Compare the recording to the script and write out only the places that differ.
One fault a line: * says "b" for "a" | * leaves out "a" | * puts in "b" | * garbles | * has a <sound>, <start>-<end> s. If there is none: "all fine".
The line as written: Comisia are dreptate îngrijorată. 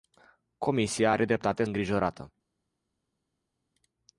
all fine